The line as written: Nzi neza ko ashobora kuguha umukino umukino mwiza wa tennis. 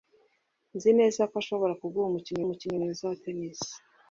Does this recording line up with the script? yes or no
yes